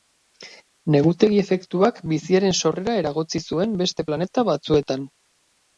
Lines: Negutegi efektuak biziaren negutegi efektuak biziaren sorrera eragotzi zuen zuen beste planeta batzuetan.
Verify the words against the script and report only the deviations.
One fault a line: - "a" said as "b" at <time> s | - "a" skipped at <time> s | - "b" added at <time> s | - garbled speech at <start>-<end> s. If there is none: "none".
- "negutegi efektuak biziaren" skipped at 2.6 s
- "zuen" skipped at 3.8 s